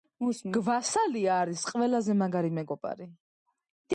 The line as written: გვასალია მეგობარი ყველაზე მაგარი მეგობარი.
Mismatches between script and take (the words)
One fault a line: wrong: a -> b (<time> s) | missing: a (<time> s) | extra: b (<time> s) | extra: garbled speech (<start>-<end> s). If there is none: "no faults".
wrong: მეგობარი -> არის (1.4 s)